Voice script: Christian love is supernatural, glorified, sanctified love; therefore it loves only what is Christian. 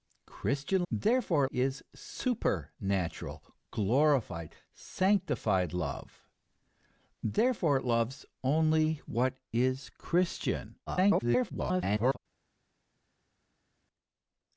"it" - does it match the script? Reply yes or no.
yes